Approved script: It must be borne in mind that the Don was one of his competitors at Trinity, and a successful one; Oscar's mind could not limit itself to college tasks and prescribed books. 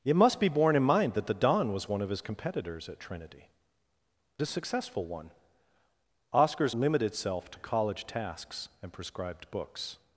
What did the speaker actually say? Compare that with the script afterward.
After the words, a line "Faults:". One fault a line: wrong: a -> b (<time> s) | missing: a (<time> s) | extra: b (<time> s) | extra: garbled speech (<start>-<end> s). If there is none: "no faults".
It must be borne in mind that the Don was one of his competitors at Trinity, a successful one; Oscar's limit itself to college tasks and prescribed books.
Faults:
missing: and (3.5 s)
missing: mind could not (6.8 s)